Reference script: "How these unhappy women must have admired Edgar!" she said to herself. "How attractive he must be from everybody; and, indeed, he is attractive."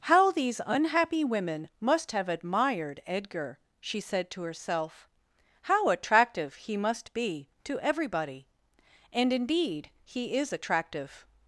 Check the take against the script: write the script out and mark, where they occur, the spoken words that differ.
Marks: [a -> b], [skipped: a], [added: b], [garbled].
"How these unhappy women must have admired Edgar!" she said to herself. "How attractive he must be [from -> to] everybody; and, indeed, he is attractive."